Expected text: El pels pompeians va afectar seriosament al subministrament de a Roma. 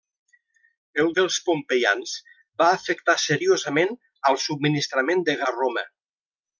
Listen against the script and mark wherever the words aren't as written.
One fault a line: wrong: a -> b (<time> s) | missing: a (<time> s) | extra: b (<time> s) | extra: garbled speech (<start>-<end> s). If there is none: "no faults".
no faults